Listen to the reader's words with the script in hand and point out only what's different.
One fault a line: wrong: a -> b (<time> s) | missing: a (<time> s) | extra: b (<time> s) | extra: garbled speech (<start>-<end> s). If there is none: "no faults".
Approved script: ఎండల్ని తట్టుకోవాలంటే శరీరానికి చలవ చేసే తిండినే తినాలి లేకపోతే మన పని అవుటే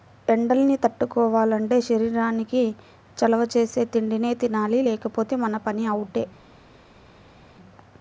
no faults